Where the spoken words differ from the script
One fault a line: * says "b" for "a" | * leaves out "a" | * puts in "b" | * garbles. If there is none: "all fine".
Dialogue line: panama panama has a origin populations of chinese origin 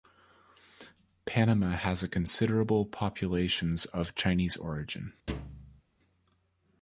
* leaves out "panama"
* says "considerable" for "origin"